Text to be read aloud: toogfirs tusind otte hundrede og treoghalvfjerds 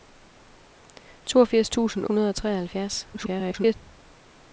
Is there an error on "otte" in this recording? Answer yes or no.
yes